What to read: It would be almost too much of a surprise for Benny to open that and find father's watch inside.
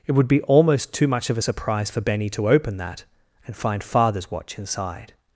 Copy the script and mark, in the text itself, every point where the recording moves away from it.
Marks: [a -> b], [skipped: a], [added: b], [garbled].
It would be almost too much of a surprise for Benny to open that and find father's watch inside.